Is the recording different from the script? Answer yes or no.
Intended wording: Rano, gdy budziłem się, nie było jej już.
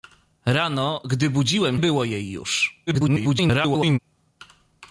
yes